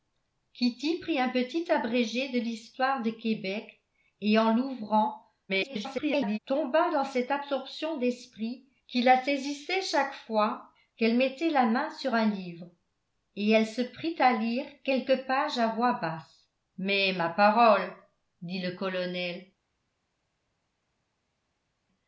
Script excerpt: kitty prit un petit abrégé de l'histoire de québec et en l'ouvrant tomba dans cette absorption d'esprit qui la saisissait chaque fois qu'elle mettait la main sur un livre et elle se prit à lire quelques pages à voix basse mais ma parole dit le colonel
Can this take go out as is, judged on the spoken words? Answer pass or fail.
fail